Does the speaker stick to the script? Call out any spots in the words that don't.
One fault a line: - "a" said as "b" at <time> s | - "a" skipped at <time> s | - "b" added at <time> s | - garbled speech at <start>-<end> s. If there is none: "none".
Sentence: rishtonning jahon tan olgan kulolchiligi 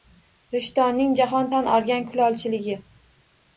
none